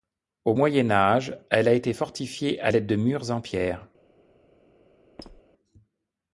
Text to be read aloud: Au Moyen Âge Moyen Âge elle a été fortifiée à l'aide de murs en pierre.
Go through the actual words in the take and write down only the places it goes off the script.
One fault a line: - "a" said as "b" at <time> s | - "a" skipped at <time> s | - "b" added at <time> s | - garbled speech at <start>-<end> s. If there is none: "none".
- "Moyen Âge" skipped at 1.4 s